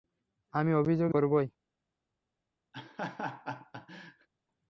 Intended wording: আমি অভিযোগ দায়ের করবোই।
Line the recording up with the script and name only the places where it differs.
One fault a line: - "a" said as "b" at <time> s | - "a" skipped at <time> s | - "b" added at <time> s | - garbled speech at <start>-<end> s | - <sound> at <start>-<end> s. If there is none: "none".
- "দায়ের" skipped at 1.1 s
- laugh at 2.7-4.3 s